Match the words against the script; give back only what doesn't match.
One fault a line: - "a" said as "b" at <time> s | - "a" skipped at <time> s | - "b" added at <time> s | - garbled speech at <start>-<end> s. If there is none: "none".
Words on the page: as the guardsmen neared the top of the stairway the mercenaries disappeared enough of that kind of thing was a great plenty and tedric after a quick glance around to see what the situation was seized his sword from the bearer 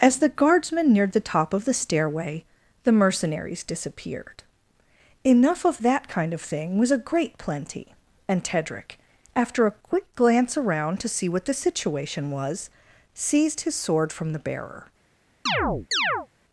none